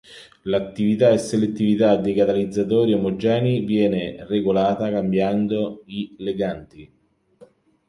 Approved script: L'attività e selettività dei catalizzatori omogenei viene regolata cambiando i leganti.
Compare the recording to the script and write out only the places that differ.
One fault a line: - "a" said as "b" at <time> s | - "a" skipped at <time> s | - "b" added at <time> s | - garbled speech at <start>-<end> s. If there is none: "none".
none